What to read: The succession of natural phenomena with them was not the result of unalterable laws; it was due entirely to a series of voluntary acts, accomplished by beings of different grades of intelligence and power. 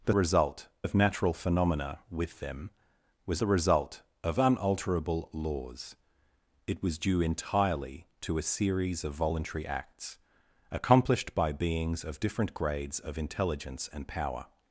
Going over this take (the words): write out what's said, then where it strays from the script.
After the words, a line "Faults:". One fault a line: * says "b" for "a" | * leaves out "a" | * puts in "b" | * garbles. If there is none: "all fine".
The result of natural phenomena with them was the result of unalterable laws; it was due entirely to a series of voluntary acts, accomplished by beings of different grades of intelligence and power.
Faults:
* says "result" for "succession"
* leaves out "not"